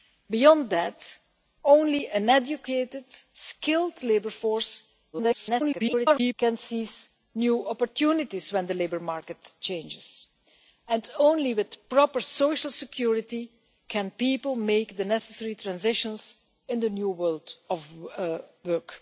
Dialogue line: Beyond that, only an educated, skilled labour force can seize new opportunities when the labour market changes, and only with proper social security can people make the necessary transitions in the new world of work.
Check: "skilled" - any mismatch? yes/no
no